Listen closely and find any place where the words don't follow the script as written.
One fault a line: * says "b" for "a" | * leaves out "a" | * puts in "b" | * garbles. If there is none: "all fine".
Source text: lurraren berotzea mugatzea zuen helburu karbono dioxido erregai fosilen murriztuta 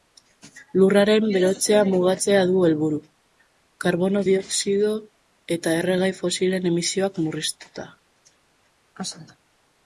* says "du" for "zuen"
* puts in "eta"
* puts in "emisioak"